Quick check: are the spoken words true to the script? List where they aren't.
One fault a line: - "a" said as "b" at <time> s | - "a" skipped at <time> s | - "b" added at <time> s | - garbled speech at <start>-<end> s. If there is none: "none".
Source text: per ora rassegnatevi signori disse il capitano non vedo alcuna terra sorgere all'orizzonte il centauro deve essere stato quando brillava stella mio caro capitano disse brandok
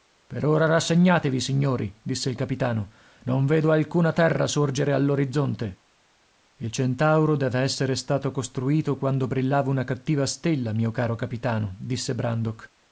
- "costruito" added at 8.3 s
- "una cattiva" added at 9.7 s